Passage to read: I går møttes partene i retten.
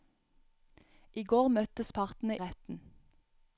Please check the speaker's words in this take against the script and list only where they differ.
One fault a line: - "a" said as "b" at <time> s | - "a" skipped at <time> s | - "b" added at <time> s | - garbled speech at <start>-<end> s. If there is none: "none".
- "i" skipped at 2.4 s